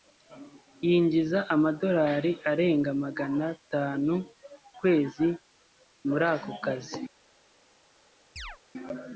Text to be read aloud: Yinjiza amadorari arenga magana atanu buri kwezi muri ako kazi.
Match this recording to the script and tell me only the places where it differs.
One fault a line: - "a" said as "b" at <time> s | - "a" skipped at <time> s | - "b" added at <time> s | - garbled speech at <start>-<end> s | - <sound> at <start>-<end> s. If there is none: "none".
- "buri" skipped at 4.1 s
- chirp at 8.4-8.6 s